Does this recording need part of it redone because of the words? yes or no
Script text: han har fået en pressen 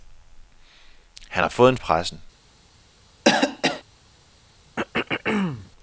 no